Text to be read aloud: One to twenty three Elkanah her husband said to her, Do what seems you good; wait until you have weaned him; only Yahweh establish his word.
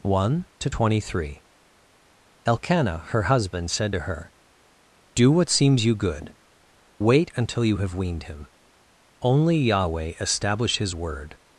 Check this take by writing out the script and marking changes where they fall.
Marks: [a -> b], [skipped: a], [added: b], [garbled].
One to twenty three Elkanah her husband said to her, Do what seems you good; wait until you have weaned him; only Yahweh establish his word.